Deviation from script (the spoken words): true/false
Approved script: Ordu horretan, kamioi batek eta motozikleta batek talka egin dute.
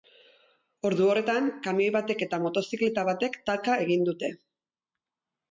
false